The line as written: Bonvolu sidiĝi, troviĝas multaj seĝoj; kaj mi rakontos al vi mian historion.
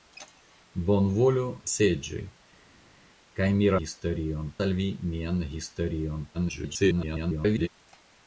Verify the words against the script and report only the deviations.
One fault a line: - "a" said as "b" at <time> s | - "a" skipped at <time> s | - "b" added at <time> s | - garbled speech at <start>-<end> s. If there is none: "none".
- "sidiĝi troviĝas multaj" skipped at 1.4 s
- "rakontos" said as "historion" at 3.8 s
- garbled speech at 6.3-7.7 s